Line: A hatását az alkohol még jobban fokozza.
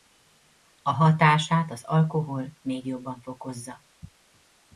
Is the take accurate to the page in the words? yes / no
yes